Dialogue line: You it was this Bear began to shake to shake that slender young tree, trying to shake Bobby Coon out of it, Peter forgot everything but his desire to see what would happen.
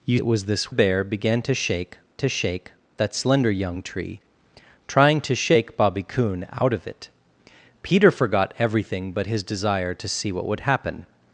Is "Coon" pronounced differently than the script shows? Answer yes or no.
no